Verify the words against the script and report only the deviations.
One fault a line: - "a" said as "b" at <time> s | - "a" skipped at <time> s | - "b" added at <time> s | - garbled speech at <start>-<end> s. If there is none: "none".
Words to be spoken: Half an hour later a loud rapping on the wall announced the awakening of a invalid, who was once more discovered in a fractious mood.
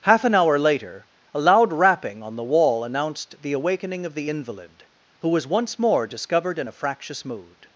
- "a" said as "the" at 4.2 s